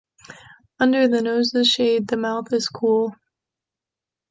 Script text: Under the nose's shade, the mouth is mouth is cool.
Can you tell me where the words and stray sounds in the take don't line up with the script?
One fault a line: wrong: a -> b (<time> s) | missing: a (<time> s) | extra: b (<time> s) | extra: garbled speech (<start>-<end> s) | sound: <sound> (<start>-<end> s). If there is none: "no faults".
missing: mouth is (2.7 s)